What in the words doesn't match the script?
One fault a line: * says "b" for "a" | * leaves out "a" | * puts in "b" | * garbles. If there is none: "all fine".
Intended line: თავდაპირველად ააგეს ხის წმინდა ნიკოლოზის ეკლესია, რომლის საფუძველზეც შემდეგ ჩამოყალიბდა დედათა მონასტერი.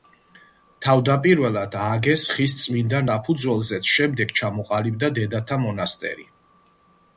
* leaves out "ნიკოლოზის ეკლესია რომლის"